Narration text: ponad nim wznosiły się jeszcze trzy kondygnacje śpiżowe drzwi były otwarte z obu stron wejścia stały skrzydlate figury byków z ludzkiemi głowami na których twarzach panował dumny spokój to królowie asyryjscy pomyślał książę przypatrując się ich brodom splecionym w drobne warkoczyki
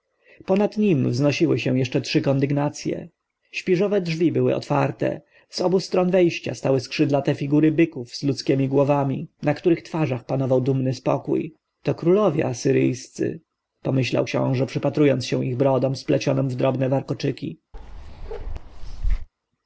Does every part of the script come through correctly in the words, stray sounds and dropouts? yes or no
no